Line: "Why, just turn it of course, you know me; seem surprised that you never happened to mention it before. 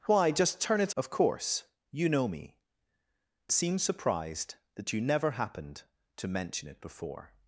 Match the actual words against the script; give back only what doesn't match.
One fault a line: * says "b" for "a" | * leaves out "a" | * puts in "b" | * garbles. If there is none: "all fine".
all fine